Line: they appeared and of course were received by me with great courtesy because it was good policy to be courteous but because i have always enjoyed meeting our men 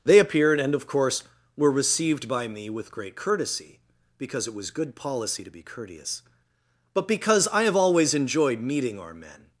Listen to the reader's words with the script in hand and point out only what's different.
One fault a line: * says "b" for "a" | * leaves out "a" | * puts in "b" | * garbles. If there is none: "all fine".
all fine